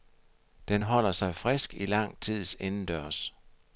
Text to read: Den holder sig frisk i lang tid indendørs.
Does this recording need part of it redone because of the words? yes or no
no